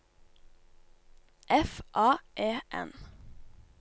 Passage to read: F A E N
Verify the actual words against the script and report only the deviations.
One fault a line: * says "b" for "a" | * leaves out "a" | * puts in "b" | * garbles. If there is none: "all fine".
all fine